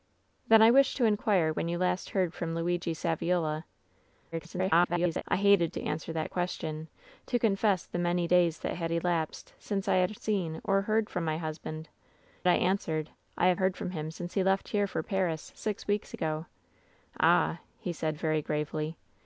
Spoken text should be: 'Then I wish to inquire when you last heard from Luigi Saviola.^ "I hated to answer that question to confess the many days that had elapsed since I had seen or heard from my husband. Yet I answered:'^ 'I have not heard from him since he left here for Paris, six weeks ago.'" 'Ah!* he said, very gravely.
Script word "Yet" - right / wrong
wrong